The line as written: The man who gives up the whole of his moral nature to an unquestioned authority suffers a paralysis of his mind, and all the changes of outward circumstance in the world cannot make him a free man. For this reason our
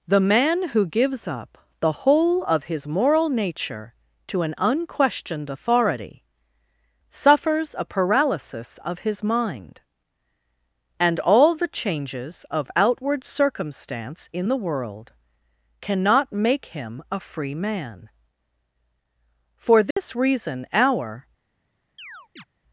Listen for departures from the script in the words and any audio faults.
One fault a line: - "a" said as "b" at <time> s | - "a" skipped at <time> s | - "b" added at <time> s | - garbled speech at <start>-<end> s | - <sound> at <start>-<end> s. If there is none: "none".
- dropout at 19.9-20.0 s
- chirp at 22.0-22.4 s